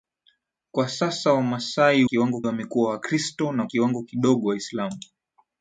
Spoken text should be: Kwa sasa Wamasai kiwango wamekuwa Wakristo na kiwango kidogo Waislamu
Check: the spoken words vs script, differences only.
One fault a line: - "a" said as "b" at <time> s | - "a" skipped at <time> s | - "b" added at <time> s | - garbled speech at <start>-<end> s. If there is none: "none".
none